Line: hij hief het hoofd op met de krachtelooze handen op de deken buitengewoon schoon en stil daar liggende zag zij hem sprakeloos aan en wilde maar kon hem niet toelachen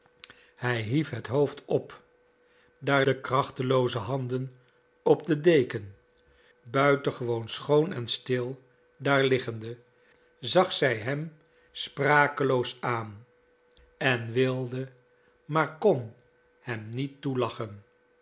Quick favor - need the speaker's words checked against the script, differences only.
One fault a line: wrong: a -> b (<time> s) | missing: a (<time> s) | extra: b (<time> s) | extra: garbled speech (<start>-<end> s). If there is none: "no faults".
wrong: met -> daar (2.8 s)